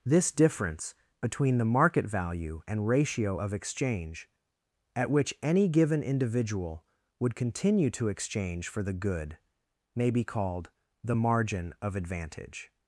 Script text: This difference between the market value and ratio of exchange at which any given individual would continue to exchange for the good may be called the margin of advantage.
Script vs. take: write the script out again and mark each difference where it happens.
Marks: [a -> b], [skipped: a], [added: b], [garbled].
This difference between the market value and ratio of exchange at which any given individual would continue to exchange for the good may be called the margin of advantage.